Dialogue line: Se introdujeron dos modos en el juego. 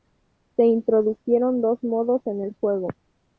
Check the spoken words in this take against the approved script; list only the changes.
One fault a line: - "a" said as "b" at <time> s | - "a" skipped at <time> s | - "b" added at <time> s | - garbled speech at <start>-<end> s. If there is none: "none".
none